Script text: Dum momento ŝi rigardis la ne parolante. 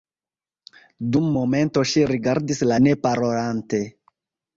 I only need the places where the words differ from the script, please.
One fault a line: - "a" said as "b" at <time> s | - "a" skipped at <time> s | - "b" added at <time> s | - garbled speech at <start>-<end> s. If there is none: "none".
none